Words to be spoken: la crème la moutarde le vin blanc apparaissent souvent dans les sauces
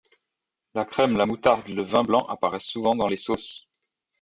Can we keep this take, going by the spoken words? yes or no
yes